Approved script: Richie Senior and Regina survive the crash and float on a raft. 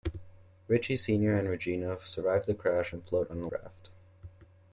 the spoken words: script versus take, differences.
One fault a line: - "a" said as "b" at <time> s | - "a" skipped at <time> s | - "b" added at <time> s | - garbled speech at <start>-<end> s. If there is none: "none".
none